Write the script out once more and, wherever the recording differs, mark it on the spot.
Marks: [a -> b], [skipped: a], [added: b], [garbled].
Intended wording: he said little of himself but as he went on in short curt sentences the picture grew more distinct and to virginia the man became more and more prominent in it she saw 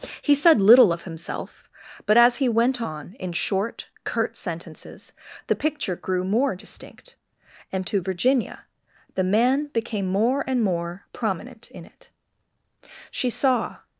he said little of himself but as he went on in short curt sentences the picture grew more distinct and to virginia the man became more and more prominent in it she saw